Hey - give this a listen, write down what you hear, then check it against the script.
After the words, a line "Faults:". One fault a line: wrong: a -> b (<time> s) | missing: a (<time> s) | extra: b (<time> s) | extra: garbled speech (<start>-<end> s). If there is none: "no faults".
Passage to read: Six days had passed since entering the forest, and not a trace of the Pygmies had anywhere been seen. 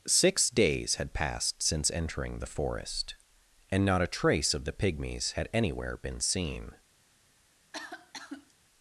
Six days had passed since entering the forest, and not a trace of the Pygmies had anywhere been seen.
Faults:
no faults